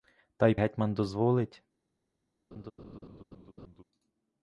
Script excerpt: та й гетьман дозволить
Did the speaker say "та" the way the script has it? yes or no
yes